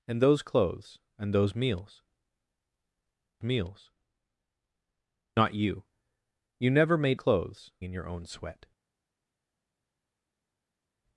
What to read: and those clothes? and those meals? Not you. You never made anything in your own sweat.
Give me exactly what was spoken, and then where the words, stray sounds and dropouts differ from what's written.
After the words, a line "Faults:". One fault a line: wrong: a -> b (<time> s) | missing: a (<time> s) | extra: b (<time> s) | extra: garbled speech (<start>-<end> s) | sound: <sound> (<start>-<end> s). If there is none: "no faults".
and those clothes? and those meals meals? Not you. You never made clothes in your own sweat.
Faults:
extra: meals (3.4 s)
wrong: anything -> clothes (7.1 s)